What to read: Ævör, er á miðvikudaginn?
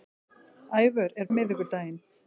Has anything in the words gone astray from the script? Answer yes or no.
no